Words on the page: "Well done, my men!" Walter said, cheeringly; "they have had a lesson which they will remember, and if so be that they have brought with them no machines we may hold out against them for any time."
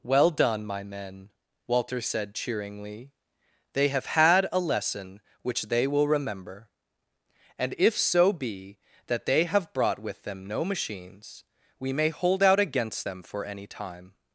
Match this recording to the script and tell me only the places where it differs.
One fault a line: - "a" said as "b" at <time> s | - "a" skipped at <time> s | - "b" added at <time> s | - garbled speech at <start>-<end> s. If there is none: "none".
none